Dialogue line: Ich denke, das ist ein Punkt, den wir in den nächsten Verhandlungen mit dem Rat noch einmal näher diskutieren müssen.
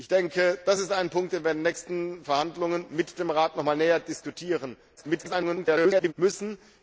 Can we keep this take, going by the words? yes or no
no